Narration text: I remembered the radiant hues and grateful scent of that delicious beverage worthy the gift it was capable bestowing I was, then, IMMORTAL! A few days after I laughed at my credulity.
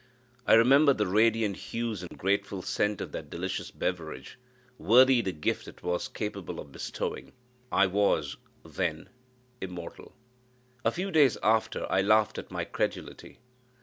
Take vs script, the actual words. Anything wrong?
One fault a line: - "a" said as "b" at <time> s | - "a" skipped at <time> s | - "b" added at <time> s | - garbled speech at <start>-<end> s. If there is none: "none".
- "of" added at 6.6 s